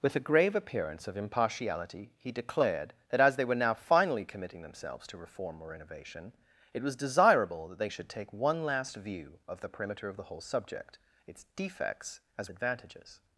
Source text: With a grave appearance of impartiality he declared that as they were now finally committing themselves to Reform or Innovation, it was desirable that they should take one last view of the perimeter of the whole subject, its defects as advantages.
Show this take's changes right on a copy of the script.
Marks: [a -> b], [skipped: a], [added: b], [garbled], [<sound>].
With a grave appearance of impartiality he declared that as they were now finally committing themselves to Reform or Innovation, it was desirable that they should take one last view of the perimeter of the whole subject, its defects as advantages.